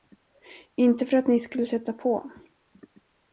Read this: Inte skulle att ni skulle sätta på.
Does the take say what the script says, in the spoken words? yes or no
no